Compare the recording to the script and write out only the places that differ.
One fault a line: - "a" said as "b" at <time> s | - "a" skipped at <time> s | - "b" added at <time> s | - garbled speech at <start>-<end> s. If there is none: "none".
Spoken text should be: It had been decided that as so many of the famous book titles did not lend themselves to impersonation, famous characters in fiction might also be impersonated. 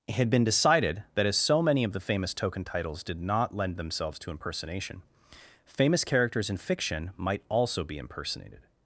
- "book" said as "token" at 2.3 s